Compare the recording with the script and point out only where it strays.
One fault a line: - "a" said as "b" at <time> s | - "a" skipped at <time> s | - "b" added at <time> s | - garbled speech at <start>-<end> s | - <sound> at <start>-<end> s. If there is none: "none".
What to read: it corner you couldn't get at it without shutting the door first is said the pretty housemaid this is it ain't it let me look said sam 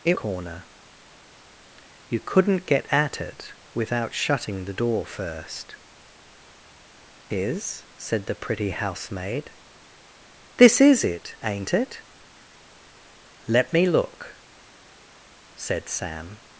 none